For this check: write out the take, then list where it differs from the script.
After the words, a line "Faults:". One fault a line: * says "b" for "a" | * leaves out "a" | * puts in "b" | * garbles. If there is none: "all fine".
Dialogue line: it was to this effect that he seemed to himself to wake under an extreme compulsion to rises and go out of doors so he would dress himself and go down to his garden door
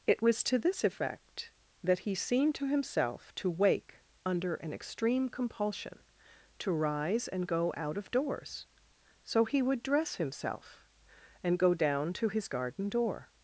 it was to this effect that he seemed to himself to wake under an extreme compulsion to rise and go out of doors so he would dress himself and go down to his garden door
Faults:
* says "rise" for "rises"